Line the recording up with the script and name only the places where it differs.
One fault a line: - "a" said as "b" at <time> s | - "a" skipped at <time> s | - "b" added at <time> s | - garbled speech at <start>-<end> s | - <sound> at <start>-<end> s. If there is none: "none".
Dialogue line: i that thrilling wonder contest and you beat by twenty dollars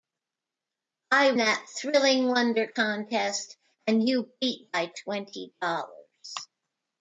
none